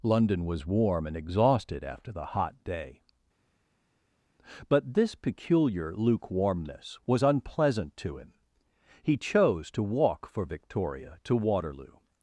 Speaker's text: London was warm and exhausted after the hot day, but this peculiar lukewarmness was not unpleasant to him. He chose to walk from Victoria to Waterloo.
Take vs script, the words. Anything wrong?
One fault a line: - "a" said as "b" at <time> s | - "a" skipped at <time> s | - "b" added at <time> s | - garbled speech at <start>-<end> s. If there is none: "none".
- "not" skipped at 7.2 s
- "from" said as "for" at 10.3 s